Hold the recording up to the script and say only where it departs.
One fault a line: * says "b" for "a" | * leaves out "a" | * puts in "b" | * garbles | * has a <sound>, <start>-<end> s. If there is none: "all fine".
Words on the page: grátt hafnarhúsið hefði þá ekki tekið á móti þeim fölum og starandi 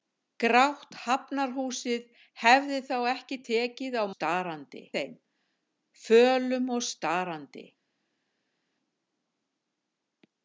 * says "starandi" for "móti"